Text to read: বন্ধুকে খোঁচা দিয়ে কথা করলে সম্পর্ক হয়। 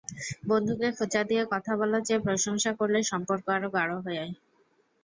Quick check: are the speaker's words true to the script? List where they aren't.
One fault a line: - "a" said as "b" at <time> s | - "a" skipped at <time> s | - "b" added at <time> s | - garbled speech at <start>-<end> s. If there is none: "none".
- "বলার চেয়ে প্রশংসা" added at 1.8 s
- "আরও গাঢ়" added at 3.5 s